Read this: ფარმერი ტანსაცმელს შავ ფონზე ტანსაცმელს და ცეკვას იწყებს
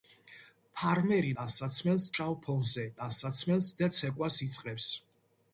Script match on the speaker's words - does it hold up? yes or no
yes